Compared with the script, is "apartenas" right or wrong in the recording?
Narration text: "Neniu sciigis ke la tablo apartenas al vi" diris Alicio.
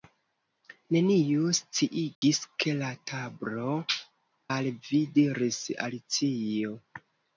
wrong